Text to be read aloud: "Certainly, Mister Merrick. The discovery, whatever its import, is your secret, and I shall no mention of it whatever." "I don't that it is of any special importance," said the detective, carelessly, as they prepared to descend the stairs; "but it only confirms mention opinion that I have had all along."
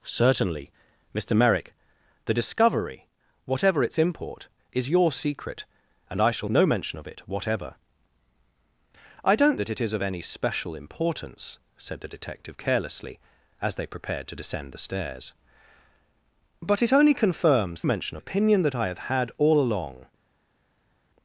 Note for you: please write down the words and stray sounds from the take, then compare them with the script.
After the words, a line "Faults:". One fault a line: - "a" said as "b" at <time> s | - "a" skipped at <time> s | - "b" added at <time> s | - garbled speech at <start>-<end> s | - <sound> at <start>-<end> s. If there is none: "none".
"Certainly, Mister Merrick. The discovery, whatever its import, is your secret, and I shall no mention of it whatever." "I don't that it is of any special importance," said the detective, carelessly, as they prepared to descend the stairs; "but it only confirms mention opinion that I have had all along."
Faults:
none